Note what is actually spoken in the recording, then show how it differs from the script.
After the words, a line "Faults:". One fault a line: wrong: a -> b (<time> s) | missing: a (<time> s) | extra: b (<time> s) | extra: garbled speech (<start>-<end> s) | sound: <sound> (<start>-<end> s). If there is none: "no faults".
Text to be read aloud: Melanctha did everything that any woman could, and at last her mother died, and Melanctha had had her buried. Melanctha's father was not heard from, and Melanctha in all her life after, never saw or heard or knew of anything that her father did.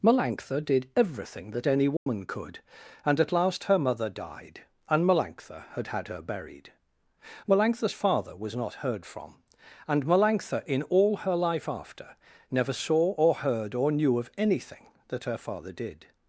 Melanctha did everything that any woman could, and at last her mother died, and Melanctha had had her buried. Melanctha's father was not heard from, and Melanctha in all her life after, never saw or heard or knew of anything that her father did.
Faults:
sound: dropout (2.0-2.1 s)